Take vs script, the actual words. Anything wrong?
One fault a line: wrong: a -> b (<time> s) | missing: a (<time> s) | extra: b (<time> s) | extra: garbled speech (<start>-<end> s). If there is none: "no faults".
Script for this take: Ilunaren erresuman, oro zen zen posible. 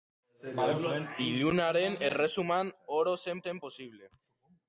no faults